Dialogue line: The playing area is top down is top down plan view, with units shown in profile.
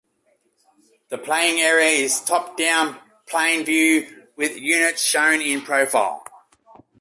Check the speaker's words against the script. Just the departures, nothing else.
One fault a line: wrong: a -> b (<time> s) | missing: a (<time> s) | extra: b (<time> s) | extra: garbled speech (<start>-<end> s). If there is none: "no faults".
missing: is top down (3.0 s)